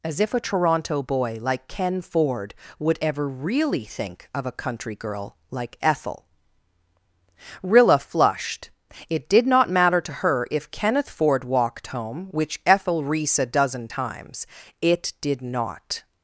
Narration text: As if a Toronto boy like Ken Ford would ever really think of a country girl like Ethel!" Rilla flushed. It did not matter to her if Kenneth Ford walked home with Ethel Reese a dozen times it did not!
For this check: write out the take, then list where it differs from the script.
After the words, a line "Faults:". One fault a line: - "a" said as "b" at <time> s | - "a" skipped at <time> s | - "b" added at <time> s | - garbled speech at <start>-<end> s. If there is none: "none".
As if a Toronto boy like Ken Ford would ever really think of a country girl like Ethel!" Rilla flushed. It did not matter to her if Kenneth Ford walked home which Ethel Reese a dozen times it did not!
Faults:
- "with" said as "which" at 12.3 s